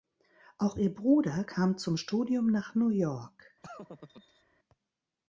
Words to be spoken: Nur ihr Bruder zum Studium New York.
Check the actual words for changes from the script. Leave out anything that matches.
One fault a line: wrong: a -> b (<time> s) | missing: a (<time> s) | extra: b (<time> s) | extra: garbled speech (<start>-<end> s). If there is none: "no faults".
wrong: Nur -> Auch (0.6 s)
extra: kam (1.4 s)
extra: nach (2.5 s)